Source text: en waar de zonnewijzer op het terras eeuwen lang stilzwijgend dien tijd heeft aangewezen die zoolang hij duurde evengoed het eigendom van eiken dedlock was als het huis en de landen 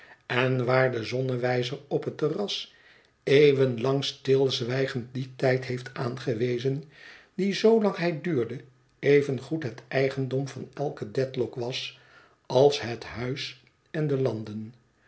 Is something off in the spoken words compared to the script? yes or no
no